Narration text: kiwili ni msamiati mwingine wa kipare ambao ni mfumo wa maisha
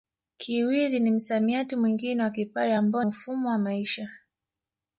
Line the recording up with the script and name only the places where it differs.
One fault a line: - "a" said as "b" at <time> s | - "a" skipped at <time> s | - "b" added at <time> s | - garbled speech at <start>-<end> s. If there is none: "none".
- "ni" skipped at 3.0 s